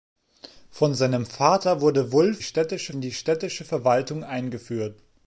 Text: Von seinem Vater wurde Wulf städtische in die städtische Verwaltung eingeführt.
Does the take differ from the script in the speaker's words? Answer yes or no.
no